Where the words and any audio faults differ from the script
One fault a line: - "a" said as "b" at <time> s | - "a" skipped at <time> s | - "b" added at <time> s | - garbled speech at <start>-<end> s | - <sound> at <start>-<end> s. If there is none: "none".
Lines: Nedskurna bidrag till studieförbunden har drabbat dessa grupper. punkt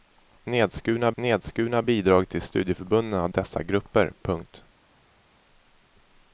- "nedskurna" added at 1.1 s
- "drabbat" skipped at 3.3 s